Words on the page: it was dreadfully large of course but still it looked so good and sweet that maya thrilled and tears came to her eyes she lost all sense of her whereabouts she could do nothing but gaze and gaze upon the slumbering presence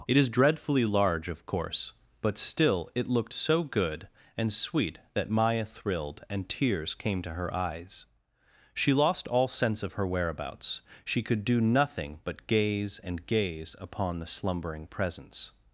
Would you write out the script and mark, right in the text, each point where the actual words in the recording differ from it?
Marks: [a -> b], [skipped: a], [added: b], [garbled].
it [was -> is] dreadfully large of course but still it looked so good and sweet that maya thrilled and tears came to her eyes she lost all sense of her whereabouts she could do nothing but gaze and gaze upon the slumbering presence